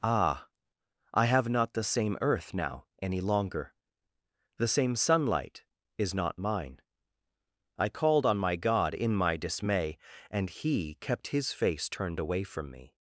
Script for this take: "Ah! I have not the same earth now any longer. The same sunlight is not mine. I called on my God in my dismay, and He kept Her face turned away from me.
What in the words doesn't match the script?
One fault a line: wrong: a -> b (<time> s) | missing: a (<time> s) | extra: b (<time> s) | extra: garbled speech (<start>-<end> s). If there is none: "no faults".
wrong: Her -> His (11.3 s)